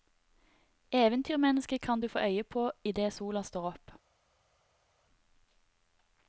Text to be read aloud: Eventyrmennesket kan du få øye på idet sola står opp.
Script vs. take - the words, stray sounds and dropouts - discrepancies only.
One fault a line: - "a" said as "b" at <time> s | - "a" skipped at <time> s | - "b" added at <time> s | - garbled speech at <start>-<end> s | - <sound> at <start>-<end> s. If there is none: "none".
none